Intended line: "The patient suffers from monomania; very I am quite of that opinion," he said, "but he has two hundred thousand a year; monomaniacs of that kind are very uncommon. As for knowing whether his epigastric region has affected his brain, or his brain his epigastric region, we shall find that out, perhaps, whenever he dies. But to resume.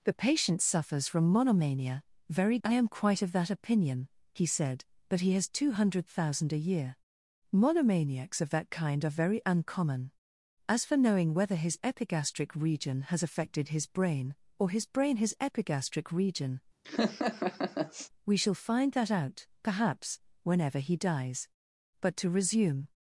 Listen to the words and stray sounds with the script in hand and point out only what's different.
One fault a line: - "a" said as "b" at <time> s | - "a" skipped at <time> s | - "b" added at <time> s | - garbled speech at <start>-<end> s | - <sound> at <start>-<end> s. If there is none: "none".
- laugh at 16.8-18.1 s